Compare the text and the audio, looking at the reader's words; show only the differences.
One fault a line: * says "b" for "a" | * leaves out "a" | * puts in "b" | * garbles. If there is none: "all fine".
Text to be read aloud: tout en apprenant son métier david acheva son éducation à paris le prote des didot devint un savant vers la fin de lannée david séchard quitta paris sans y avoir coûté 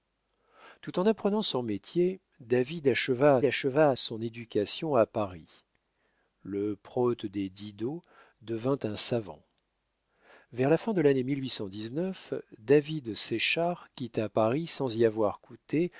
* puts in "acheva"